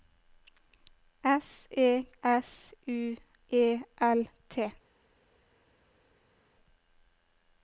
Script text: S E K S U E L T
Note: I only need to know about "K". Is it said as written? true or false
false